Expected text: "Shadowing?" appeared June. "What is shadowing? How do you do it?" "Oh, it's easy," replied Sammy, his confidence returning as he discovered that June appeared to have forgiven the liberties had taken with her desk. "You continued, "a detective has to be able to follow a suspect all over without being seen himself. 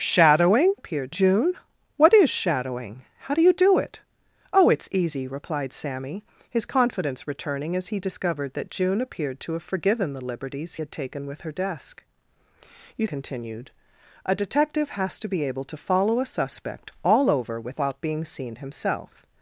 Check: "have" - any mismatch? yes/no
no